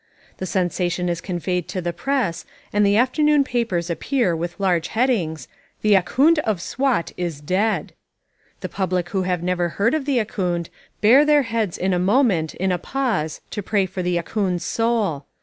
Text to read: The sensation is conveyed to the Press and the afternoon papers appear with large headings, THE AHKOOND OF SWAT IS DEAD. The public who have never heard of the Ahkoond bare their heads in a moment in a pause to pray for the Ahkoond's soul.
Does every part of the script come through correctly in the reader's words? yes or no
yes